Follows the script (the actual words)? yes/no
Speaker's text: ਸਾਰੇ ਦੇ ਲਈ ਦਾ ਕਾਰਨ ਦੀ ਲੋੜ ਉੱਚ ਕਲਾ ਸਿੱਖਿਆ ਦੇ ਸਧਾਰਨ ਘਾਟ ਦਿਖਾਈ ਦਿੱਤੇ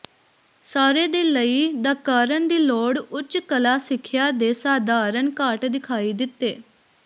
yes